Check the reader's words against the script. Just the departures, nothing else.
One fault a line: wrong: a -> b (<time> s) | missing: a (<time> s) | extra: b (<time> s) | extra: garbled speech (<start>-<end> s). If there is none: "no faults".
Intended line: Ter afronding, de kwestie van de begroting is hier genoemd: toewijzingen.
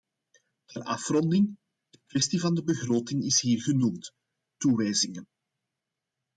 no faults